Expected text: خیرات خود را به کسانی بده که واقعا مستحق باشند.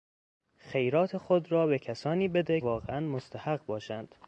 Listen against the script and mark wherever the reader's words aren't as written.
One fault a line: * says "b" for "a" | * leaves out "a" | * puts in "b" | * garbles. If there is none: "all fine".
* leaves out "که"